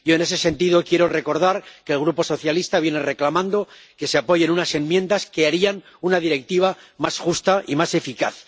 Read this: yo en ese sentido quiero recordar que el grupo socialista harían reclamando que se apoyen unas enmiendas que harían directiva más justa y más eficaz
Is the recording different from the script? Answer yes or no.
yes